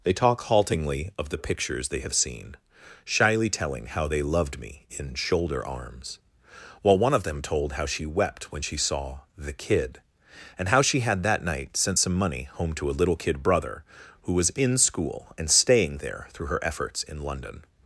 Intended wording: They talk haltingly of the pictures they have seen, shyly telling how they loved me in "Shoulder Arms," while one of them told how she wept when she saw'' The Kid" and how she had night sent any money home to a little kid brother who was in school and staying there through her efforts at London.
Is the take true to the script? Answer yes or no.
no